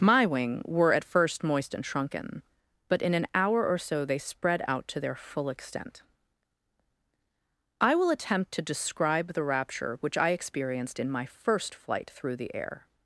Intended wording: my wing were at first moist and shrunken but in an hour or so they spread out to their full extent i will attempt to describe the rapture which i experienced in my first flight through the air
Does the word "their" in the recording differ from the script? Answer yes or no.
no